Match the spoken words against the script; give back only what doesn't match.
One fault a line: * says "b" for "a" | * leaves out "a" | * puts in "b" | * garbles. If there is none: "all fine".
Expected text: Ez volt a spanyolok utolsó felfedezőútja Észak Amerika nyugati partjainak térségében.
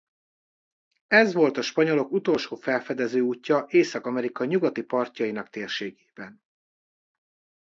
all fine